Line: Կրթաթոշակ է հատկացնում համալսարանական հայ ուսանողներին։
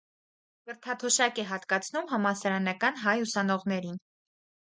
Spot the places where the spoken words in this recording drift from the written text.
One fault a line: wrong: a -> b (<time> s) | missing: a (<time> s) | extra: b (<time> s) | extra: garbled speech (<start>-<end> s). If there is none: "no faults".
no faults